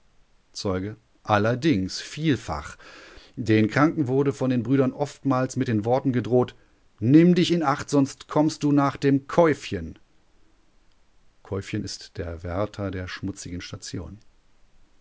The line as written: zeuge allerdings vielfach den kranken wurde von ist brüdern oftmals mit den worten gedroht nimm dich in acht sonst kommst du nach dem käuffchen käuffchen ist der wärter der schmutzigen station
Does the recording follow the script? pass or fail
fail